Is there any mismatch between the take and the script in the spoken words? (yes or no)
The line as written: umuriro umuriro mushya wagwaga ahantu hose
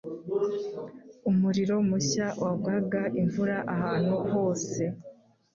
yes